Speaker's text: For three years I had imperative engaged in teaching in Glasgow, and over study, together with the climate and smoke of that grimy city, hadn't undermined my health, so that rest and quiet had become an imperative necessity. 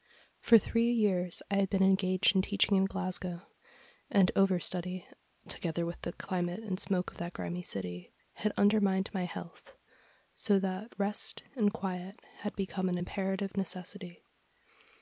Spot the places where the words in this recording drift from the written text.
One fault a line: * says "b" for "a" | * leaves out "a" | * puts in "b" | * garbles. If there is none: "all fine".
* says "been" for "imperative"
* says "had" for "hadn't"